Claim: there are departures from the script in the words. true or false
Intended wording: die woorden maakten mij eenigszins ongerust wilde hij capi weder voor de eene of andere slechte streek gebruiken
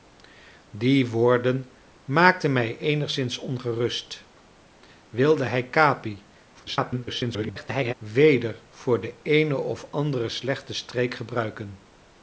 true